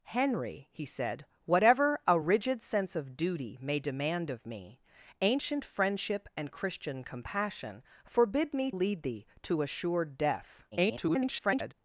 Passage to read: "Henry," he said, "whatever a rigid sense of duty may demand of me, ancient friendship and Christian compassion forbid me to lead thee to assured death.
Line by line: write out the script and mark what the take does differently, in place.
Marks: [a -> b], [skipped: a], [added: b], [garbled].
"Henry," he said, "whatever a rigid sense of duty may demand of me, ancient friendship and Christian compassion forbid me [skipped: to] lead thee to assured death. [garbled]